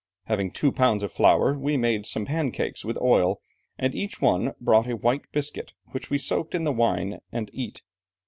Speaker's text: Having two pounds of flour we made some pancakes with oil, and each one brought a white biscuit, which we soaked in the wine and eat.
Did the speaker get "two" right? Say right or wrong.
right